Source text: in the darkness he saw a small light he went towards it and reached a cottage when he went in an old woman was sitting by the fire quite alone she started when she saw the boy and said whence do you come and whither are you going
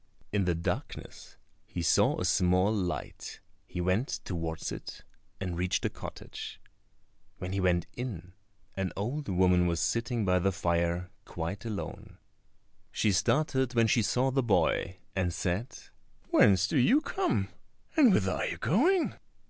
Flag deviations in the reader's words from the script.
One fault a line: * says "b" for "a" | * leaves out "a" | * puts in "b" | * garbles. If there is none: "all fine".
all fine